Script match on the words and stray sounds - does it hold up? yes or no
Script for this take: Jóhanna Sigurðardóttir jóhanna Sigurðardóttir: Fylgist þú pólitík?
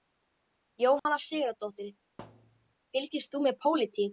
no